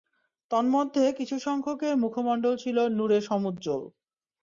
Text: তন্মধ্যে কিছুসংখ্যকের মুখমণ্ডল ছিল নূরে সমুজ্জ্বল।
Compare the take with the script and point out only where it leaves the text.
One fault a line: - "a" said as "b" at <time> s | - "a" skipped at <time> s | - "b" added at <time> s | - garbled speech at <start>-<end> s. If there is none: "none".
none